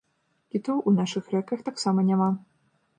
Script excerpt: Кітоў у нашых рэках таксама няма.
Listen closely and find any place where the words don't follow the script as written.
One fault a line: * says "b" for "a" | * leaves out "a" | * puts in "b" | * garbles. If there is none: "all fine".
all fine